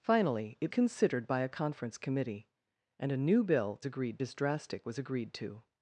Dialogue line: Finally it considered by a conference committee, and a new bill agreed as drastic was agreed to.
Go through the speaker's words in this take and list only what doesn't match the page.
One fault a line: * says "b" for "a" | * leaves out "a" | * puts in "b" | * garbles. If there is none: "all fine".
all fine